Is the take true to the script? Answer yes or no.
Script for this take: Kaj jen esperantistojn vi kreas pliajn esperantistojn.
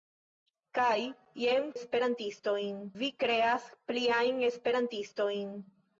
yes